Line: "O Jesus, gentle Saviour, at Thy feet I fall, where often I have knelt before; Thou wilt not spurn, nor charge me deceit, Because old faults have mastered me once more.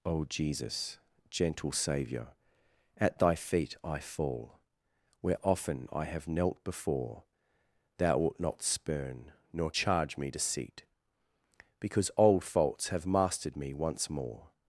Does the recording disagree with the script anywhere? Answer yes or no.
no